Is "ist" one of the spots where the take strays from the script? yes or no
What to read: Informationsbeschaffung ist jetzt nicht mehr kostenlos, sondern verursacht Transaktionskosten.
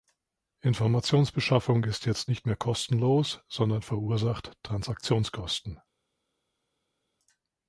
no